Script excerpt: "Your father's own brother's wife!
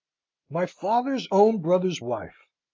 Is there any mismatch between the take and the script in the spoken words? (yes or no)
yes